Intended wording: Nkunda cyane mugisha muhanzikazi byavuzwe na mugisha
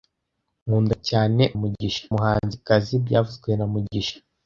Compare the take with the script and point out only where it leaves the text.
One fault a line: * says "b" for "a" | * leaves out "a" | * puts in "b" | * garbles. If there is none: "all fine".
all fine